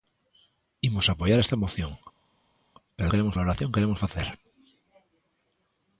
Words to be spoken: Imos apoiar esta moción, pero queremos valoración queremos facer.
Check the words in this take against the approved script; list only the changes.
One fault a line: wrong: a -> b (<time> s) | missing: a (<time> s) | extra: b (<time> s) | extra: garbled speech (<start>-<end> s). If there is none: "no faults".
no faults